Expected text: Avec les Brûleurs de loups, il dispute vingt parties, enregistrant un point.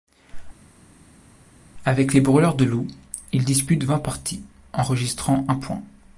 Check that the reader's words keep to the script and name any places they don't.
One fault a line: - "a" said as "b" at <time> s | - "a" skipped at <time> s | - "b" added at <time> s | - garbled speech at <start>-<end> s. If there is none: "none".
none